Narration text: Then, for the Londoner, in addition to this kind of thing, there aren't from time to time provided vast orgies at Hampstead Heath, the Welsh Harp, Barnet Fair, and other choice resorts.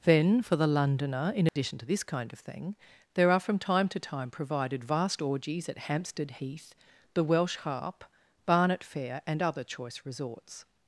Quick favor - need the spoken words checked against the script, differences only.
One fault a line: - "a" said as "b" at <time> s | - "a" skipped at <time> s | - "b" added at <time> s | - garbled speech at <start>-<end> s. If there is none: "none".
- "aren't" said as "are" at 3.3 s